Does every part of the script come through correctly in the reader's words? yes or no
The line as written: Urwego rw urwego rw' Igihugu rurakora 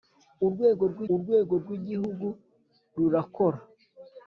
yes